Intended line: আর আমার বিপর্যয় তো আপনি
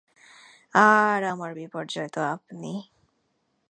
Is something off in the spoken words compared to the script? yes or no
no